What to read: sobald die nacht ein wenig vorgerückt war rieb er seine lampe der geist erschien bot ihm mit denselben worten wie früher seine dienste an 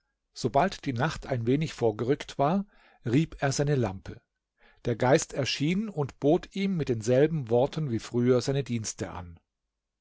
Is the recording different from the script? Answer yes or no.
yes